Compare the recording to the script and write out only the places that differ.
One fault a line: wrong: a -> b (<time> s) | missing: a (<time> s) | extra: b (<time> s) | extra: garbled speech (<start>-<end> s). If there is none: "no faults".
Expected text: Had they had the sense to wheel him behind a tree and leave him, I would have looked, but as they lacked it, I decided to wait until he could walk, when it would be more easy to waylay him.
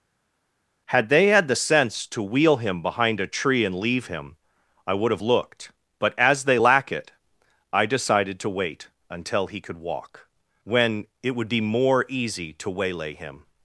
wrong: lacked -> lack (6.5 s)